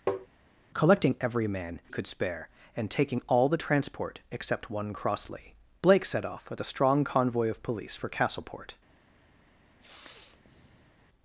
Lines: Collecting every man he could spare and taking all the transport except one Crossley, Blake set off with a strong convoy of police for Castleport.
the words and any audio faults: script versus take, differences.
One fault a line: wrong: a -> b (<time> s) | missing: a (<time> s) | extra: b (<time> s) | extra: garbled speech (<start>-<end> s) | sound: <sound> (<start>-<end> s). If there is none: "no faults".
sound: tap (0.1-0.3 s)
missing: he (1.8 s)
sound: sniff (9.8-10.9 s)